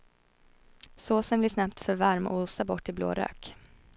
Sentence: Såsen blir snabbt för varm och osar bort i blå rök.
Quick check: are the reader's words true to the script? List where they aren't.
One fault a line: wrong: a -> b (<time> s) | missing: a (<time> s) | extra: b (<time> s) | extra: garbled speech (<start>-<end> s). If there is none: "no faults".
no faults